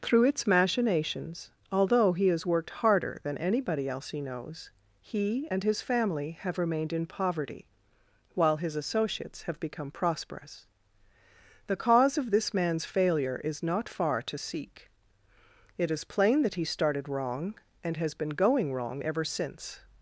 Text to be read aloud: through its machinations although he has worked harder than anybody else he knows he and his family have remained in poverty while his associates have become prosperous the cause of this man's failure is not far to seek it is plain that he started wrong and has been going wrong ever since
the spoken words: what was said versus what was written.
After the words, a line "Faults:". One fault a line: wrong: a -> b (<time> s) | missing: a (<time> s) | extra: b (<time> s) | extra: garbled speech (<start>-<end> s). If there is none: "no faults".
through its machinations although he has worked harder than anybody else he knows he and his family have remained in poverty while his associates have become prosperous the cause of this man's failure is not far to seek it is plain that he started wrong and has been going wrong ever since
Faults:
no faults